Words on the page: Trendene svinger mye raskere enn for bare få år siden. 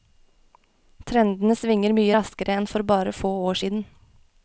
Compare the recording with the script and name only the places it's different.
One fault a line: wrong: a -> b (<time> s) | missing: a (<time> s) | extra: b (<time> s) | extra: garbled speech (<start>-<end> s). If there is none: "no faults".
no faults